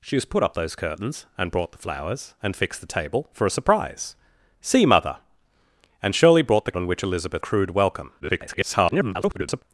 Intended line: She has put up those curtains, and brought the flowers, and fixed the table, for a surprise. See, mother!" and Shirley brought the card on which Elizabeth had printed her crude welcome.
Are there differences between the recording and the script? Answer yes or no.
yes